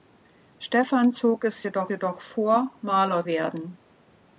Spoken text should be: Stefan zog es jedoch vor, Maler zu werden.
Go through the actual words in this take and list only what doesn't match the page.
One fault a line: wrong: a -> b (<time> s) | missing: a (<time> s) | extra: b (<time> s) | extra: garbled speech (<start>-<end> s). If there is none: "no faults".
extra: jedoch (1.9 s)
missing: zu (3.3 s)